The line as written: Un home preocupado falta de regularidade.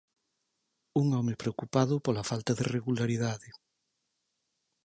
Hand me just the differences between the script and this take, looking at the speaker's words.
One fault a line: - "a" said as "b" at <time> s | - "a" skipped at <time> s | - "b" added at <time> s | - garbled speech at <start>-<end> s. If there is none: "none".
- "pola" added at 2.0 s